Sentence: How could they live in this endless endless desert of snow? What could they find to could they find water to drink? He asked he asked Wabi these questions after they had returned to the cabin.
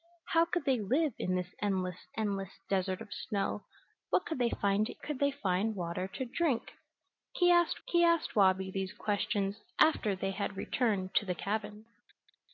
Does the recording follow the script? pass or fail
pass